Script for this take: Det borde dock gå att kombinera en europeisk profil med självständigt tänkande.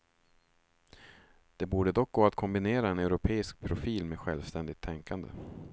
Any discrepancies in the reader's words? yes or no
no